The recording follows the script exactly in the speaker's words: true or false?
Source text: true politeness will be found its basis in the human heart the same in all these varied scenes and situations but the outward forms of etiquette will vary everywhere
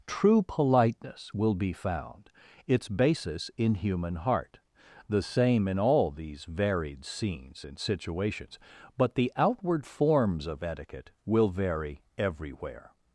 false